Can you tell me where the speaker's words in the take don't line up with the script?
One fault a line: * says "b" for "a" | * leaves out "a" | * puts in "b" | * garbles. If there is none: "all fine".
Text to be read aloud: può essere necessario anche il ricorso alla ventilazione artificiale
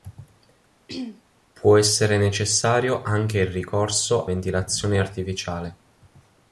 * leaves out "alla"